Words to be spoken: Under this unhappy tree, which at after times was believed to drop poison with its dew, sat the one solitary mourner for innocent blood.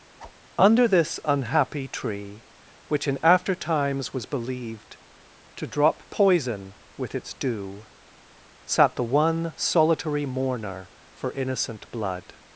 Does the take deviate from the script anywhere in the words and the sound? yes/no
yes